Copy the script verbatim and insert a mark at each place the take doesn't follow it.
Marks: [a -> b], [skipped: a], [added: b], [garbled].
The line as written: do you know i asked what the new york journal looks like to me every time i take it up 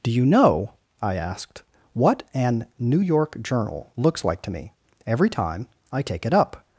do you know i asked what [the -> an] new york journal looks like to me every time i take it up